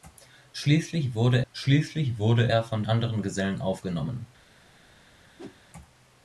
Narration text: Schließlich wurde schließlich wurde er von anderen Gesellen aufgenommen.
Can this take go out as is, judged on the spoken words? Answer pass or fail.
pass